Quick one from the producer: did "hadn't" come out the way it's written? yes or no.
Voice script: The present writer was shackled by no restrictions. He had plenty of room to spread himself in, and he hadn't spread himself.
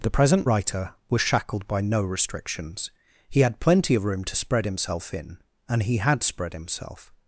no